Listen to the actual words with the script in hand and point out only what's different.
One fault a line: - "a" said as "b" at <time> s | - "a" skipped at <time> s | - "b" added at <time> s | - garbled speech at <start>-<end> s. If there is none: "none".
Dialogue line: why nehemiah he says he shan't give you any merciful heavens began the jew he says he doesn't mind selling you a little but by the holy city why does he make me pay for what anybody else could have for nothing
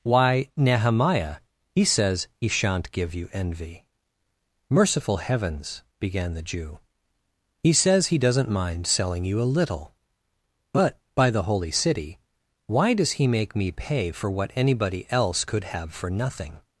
- "any" said as "envy" at 3.3 s